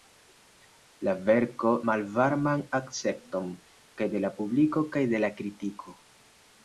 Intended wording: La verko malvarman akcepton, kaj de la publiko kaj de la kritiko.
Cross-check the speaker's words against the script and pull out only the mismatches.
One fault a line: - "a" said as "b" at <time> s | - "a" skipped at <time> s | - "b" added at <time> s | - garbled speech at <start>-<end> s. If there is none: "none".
none